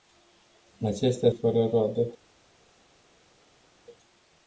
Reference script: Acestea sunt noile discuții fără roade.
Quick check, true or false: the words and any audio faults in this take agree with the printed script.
false